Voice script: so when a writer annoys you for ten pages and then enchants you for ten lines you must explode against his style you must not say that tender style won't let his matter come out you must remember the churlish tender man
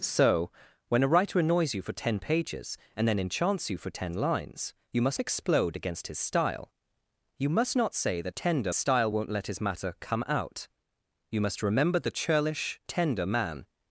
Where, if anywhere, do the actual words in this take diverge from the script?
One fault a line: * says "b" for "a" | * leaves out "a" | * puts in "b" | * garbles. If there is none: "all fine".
all fine